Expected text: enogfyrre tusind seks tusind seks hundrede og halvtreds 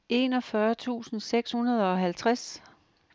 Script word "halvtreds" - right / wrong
right